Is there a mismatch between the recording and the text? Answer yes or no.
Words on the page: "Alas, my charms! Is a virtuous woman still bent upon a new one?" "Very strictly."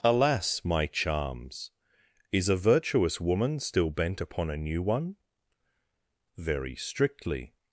no